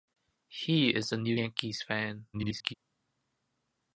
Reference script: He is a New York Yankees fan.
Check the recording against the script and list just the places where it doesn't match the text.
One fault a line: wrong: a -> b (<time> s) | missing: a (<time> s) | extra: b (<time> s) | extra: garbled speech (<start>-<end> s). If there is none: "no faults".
missing: York (1.4 s)
extra: garbled speech (2.3-2.7 s)